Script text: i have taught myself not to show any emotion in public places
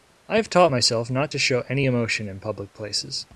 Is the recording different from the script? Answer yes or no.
no